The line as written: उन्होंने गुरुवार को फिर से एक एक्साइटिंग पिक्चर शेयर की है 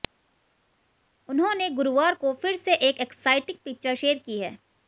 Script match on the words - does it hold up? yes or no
yes